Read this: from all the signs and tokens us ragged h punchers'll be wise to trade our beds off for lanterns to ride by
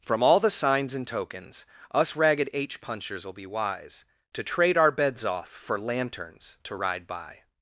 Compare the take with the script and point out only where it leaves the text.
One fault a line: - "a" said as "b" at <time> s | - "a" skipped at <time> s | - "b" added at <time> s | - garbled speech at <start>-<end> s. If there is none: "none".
none